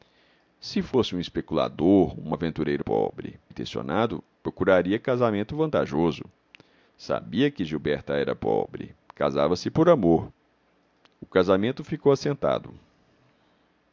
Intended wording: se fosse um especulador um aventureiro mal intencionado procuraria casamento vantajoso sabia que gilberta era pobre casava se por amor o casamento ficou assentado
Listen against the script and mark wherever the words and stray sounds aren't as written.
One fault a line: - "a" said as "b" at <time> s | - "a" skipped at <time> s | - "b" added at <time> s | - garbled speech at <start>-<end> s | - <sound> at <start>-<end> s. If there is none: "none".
- "mal" said as "pobre" at 2.8 s